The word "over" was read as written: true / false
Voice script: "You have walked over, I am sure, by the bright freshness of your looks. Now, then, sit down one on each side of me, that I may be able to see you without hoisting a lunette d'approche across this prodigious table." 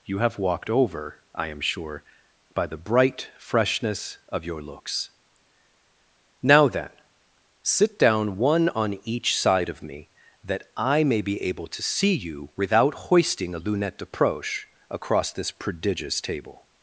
true